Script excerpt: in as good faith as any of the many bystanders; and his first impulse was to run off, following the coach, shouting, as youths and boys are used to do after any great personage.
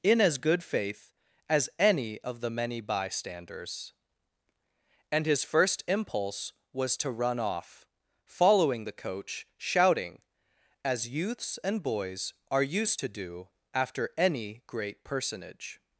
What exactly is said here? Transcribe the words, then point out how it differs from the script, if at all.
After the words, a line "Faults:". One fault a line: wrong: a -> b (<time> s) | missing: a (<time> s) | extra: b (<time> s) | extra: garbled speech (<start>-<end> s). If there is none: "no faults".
in as good faith as any of the many bystanders; and his first impulse was to run off, following the coach, shouting, as youths and boys are used to do after any great personage.
Faults:
no faults